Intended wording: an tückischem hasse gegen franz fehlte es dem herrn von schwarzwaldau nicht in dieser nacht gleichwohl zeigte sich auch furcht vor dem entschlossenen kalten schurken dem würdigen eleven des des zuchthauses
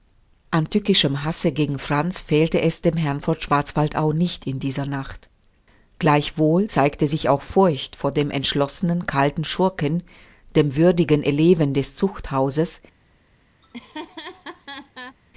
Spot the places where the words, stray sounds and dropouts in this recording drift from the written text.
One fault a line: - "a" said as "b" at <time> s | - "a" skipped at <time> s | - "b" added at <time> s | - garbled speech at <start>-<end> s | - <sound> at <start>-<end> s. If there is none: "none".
- "des" skipped at 11.9 s
- laugh at 13.6-15.2 s